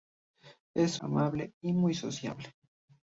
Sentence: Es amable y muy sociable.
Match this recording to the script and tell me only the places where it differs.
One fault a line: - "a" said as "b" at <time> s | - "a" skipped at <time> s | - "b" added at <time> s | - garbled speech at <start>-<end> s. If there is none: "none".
none